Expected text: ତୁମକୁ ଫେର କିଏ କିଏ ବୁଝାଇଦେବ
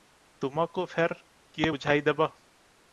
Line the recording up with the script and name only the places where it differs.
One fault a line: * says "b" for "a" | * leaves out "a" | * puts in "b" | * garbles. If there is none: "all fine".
* leaves out "କିଏ"